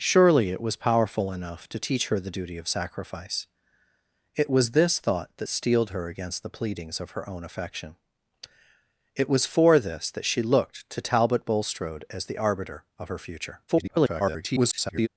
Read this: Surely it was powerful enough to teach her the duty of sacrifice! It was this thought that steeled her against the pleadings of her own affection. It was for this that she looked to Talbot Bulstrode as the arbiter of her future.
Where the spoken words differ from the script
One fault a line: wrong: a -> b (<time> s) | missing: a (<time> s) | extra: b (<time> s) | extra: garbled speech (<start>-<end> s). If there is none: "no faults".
extra: garbled speech (13.7-15.1 s)